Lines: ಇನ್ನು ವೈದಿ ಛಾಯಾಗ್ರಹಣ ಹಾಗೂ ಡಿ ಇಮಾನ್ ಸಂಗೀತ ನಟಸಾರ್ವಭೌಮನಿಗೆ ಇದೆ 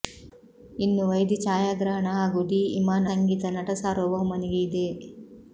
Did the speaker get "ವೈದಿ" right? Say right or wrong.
right